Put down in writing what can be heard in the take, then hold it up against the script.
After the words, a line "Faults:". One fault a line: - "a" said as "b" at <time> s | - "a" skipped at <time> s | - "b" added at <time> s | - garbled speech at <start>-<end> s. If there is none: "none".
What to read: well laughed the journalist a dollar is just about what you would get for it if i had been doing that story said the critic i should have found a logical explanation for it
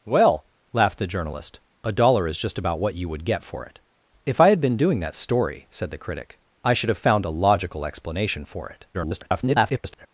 well laughed the journalist a dollar is just about what you would get for it if i had been doing that story said the critic i should have found a logical explanation for it [garbled]
Faults:
- garbled speech at 8.9-10.1 s